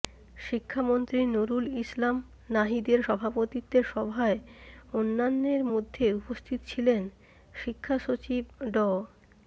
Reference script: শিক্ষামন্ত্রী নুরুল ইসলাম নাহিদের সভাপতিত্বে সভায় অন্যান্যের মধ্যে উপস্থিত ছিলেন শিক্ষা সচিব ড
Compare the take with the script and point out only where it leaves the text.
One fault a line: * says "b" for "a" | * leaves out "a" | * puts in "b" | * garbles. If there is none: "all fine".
all fine